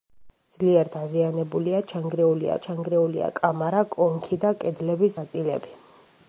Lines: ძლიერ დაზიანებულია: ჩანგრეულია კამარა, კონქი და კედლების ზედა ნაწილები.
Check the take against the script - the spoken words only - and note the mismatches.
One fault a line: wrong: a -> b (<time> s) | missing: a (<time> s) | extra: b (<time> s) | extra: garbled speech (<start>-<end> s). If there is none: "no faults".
extra: ჩანგრეულია (2.7 s)
missing: ზედა (5.2 s)